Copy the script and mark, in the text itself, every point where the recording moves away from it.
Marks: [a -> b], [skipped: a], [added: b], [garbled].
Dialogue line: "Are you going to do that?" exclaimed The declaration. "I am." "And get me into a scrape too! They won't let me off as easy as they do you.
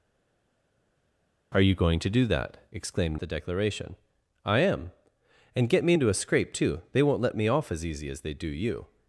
"Are you going to do that?" exclaimed The declaration. "I am." "And get me into a scrape too! They won't let me off as easy as they do you.